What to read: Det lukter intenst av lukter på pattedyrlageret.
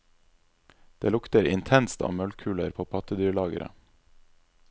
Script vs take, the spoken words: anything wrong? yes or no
yes